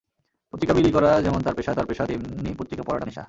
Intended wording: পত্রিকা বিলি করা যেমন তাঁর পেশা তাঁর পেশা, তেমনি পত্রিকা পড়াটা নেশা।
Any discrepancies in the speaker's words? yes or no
no